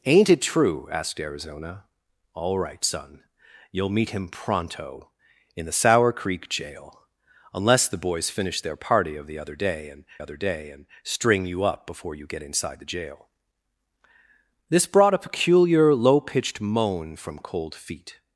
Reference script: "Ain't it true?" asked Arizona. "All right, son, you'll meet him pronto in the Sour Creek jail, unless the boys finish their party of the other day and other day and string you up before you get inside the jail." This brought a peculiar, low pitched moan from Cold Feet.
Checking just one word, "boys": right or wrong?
right